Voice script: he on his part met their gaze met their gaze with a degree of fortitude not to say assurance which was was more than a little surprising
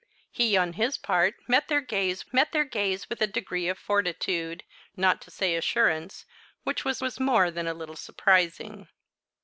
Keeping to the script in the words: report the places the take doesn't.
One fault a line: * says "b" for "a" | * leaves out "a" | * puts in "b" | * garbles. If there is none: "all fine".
all fine